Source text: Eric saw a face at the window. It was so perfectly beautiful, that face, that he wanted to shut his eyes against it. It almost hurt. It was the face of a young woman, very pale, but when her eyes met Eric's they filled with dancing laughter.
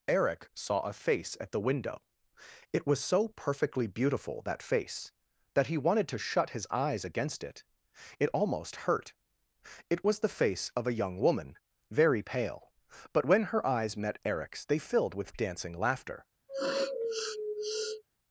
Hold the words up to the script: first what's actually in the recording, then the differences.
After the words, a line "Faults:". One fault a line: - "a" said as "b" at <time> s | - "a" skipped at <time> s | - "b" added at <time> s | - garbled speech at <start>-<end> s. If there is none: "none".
Eric saw a face at the window. It was so perfectly beautiful, that face, that he wanted to shut his eyes against it. It almost hurt. It was the face of a young woman, very pale, but when her eyes met Eric's they filled with dancing laughter.
Faults:
none